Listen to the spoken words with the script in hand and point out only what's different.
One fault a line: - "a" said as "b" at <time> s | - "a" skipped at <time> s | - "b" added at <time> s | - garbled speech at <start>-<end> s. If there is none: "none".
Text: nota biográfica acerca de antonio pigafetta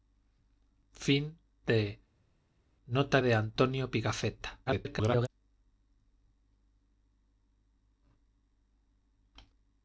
- "biográfica acerca" skipped at 3.2 s
- garbled speech at 4.7-5.3 s